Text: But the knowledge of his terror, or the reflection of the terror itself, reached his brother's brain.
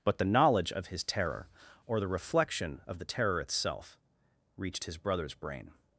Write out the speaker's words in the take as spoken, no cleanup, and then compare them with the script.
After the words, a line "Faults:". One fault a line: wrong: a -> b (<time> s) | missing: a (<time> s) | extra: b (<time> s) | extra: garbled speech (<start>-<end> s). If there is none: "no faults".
But the knowledge of his terror, or the reflection of the terror itself, reached his brother's brain.
Faults:
no faults